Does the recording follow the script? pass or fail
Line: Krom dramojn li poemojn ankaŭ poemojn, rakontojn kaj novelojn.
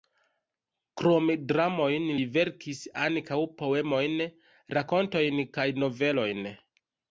fail